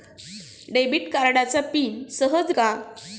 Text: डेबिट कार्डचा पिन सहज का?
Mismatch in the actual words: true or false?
false